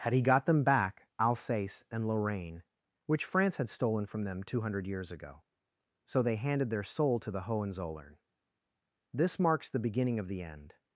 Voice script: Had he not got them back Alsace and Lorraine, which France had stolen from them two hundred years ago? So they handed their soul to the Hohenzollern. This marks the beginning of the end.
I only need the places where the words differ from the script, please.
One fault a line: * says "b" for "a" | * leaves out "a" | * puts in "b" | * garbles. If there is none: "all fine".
* leaves out "not"